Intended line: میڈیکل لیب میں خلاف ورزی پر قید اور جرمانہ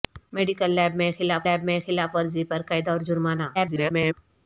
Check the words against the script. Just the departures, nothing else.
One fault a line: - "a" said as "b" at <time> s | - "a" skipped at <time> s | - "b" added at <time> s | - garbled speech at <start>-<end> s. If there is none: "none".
- "لیب میں خلاف" added at 1.5 s
- garbled speech at 3.5-4.1 s